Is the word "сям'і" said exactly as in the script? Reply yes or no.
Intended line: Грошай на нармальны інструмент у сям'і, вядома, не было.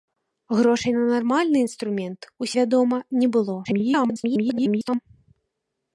no